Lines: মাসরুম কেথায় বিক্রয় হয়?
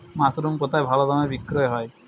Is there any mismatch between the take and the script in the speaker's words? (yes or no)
yes